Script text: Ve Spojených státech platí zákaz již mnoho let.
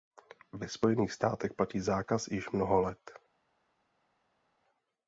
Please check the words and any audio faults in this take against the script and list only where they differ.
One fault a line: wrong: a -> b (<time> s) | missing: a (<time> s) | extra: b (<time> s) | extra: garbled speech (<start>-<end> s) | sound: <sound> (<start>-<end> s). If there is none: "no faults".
no faults